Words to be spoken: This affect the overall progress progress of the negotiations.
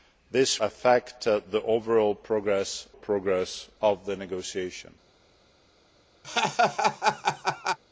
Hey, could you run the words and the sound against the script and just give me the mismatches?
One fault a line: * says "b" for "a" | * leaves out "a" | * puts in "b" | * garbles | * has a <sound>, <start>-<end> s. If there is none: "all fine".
* has a laugh, 6.2-7.8 s